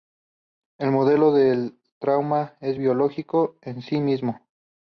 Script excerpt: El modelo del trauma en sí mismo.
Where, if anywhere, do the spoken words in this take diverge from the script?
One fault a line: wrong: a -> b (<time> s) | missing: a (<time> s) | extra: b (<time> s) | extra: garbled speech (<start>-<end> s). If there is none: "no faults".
extra: es biológico (2.6 s)